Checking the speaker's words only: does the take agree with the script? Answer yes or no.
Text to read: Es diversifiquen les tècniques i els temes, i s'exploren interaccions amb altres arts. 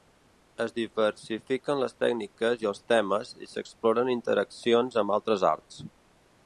yes